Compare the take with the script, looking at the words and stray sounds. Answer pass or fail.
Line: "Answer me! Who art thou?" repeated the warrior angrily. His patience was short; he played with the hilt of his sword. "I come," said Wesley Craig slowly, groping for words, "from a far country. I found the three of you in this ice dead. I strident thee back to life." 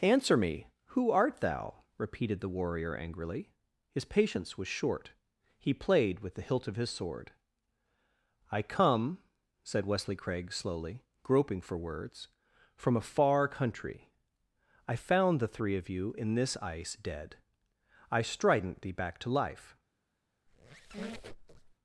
fail